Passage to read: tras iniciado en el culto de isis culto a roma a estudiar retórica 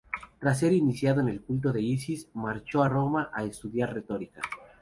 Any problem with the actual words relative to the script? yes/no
yes